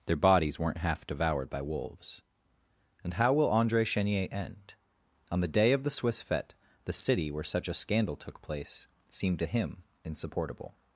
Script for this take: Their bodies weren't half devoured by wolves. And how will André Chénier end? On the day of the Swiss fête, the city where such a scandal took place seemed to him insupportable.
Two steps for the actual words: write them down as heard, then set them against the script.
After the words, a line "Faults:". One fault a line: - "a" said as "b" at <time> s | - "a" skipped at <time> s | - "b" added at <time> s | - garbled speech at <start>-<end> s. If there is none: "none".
Their bodies weren't half devoured by wolves. And how will André Chénier end? On the day of the Swiss fête, the city where such a scandal took place seemed to him insupportable.
Faults:
none